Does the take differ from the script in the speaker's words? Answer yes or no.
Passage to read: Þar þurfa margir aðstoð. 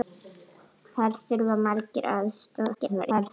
yes